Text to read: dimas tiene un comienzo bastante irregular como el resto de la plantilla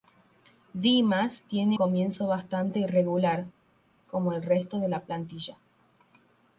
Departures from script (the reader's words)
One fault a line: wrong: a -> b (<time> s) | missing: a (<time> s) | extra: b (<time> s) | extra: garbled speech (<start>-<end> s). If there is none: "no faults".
missing: un (1.8 s)